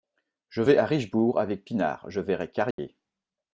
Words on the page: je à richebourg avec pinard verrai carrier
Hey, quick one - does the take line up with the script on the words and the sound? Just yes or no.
no